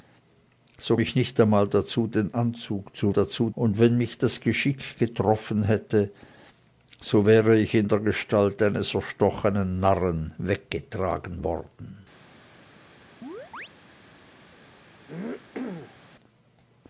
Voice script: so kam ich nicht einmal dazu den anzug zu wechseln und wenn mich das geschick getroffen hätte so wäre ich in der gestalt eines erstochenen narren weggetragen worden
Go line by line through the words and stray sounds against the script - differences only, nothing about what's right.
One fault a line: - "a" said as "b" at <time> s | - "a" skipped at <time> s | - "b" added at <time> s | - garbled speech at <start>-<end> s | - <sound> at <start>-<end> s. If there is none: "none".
- "kam" skipped at 1.0 s
- "wechseln" said as "dazu" at 3.1 s
- chirp at 13.2-13.7 s
- throat clearing at 15.1-16.0 s